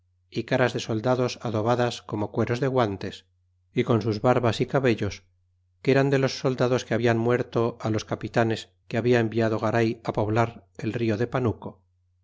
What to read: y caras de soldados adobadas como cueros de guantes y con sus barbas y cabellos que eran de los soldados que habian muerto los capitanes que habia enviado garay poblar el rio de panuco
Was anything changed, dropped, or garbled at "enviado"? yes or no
no